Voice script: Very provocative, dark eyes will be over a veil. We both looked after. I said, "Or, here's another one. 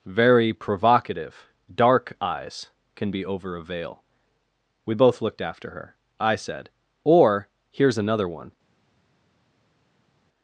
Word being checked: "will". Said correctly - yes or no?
no